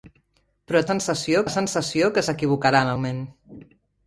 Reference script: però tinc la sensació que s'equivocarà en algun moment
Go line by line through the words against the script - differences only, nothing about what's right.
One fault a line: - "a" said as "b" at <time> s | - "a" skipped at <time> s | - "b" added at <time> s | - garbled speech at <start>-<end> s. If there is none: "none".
- "tinc" said as "sensació" at 0.9 s
- "algun" skipped at 2.9 s